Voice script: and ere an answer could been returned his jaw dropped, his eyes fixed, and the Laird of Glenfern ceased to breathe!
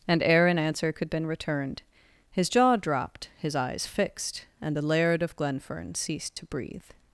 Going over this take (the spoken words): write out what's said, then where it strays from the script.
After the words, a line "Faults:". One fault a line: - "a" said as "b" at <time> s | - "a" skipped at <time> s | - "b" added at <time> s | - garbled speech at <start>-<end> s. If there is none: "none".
and ere an answer could been returned his jaw dropped, his eyes fixed, and the Laird of Glenfern ceased to breathe!
Faults:
none